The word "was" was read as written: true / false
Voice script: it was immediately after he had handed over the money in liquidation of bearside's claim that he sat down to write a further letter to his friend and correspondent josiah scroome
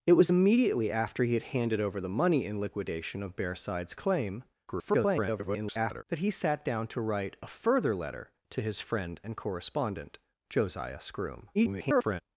true